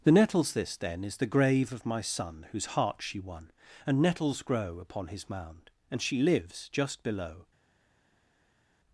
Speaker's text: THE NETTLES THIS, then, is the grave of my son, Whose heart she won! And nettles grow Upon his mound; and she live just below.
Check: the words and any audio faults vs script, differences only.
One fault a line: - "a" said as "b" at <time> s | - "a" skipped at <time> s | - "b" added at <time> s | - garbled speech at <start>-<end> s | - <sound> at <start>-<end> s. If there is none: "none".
- "live" said as "lives" at 6.2 s